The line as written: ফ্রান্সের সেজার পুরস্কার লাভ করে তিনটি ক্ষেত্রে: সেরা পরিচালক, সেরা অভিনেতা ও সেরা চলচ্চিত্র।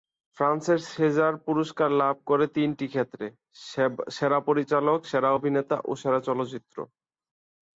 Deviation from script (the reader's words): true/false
false